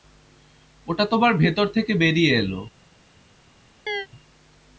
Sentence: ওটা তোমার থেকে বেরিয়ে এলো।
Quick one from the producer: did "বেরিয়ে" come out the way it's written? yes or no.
yes